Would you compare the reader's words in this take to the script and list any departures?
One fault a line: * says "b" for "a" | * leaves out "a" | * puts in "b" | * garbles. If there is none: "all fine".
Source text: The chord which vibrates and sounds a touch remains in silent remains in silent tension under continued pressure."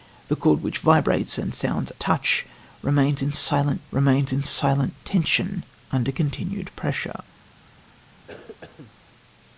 all fine